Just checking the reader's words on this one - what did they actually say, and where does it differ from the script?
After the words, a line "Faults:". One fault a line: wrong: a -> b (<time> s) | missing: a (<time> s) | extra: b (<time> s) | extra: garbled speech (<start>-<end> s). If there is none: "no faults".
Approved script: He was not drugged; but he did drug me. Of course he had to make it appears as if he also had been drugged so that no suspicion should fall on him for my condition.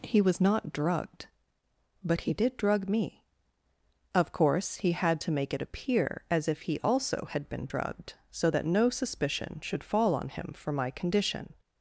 He was not drugged; but he did drug me. Of course he had to make it appear as if he also had been drugged so that no suspicion should fall on him for my condition.
Faults:
wrong: appears -> appear (5.6 s)